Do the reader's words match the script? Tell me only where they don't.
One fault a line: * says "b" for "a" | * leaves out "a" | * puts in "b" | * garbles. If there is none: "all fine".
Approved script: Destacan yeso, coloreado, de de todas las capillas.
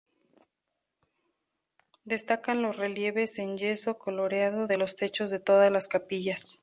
* puts in "los relieves en"
* puts in "los techos"